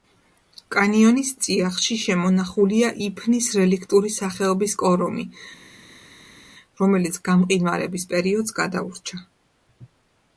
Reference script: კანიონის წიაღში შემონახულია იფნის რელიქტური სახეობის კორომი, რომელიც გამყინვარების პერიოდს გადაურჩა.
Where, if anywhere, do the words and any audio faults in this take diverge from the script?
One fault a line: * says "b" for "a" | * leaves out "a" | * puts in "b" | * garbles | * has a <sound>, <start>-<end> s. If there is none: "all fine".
all fine